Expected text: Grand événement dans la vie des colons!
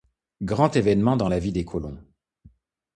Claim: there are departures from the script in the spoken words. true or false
false